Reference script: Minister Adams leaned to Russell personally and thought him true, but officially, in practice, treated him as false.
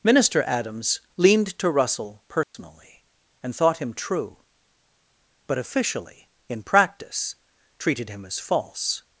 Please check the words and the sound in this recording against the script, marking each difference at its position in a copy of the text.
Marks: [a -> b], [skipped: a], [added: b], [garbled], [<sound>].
Minister Adams leaned to Russell personally [dropout] and thought him true, but officially, in practice, treated him as false.